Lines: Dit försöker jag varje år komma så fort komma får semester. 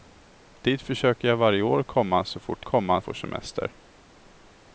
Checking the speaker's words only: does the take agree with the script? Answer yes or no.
yes